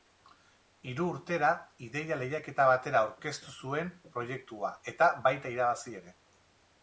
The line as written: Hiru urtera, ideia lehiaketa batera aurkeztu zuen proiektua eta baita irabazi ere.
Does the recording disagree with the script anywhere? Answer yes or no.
no